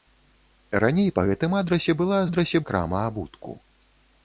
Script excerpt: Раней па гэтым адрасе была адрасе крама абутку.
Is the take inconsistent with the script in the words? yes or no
no